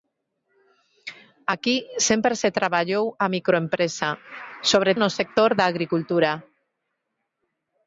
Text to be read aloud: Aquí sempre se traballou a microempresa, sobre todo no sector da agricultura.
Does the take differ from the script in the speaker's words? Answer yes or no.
yes